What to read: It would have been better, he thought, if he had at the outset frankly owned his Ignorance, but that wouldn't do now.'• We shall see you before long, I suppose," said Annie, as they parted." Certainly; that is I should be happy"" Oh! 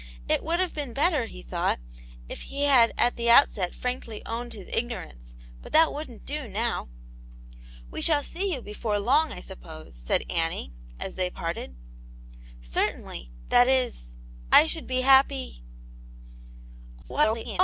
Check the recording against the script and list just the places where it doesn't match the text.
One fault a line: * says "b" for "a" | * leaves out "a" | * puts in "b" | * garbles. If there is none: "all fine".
* garbles